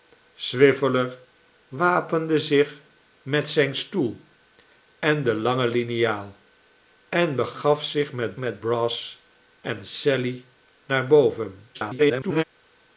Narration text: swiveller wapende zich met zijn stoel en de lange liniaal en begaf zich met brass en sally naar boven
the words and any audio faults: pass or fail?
fail